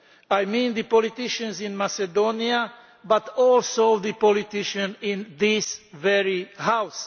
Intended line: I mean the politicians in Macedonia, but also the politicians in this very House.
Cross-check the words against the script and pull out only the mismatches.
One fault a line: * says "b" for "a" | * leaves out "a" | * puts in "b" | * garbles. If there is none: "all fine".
all fine